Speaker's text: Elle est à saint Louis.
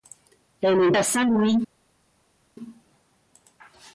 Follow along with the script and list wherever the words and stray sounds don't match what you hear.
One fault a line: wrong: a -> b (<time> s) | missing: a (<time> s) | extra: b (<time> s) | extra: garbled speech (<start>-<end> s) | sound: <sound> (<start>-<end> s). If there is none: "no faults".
no faults